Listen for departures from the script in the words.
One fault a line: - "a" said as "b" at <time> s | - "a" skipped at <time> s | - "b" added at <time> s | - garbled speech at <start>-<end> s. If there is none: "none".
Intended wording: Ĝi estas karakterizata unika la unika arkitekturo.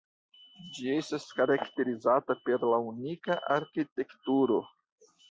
- "unika" said as "per" at 2.5 s